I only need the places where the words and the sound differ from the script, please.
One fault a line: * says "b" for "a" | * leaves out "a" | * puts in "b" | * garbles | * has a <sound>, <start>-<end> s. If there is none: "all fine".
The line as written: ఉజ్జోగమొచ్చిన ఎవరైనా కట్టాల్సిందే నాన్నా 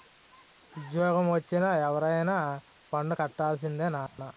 * puts in "పన్ను"
* has a dropout, 4.1-4.2 s